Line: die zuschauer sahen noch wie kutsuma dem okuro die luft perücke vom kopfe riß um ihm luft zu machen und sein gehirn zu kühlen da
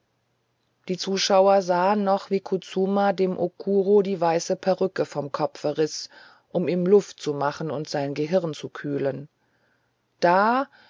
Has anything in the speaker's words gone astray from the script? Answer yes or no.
yes